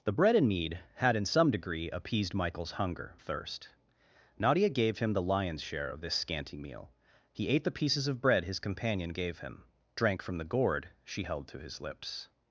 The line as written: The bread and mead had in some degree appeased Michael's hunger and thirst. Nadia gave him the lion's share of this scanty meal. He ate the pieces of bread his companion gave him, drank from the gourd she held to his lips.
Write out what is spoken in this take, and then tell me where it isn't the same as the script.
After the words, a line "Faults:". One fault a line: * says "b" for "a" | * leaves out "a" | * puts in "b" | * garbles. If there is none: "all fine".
The bread and mead had in some degree appeased Michael's hunger thirst. Nadia gave him the lion's share of this scanty meal. He ate the pieces of bread his companion gave him, drank from the gourd she held to his lips.
Faults:
* leaves out "and"